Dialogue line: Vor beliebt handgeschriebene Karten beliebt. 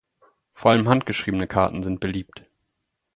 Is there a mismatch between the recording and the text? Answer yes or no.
yes